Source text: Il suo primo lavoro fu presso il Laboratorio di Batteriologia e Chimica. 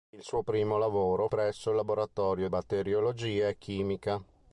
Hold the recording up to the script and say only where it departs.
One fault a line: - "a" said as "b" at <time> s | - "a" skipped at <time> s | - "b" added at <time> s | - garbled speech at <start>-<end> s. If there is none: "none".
- "fu" skipped at 1.3 s
- "di" skipped at 2.5 s